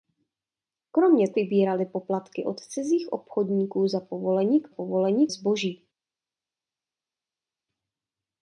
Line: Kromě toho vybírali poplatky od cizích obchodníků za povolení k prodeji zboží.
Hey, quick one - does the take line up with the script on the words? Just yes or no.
no